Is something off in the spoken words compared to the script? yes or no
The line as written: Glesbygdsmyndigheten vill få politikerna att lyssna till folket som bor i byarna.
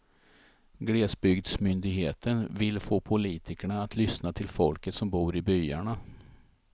no